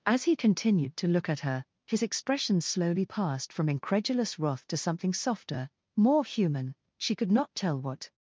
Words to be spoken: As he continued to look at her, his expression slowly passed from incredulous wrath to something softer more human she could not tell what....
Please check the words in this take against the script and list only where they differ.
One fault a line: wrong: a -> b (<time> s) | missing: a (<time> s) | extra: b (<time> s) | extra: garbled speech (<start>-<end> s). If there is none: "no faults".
no faults